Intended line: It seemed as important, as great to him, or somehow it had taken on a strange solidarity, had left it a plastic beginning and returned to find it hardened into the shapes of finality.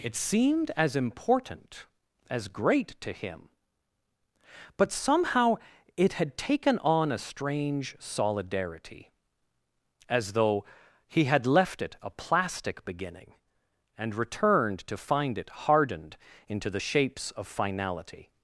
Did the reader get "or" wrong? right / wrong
wrong